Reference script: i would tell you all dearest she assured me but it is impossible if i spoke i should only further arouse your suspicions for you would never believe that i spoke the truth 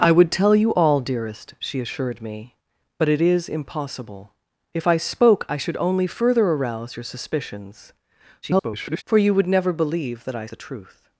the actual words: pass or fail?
fail